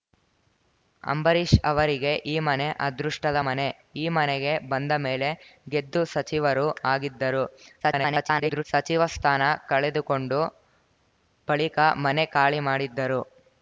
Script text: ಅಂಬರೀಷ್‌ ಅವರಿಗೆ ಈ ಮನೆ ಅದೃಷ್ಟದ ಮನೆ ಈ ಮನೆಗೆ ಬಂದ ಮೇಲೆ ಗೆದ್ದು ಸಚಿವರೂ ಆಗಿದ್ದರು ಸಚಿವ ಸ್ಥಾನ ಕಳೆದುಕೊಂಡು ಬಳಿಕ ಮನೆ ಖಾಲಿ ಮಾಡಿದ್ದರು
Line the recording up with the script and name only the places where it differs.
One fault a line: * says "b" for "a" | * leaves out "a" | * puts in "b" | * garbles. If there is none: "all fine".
* garbles